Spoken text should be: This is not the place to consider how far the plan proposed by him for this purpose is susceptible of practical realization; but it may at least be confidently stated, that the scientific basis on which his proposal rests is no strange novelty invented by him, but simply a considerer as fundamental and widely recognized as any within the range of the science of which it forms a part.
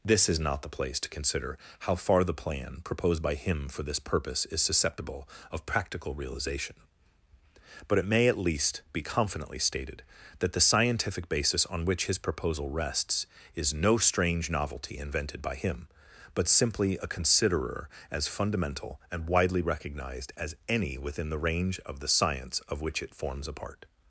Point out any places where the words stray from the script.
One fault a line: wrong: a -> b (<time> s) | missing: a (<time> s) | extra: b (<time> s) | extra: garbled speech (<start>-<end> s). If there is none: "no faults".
no faults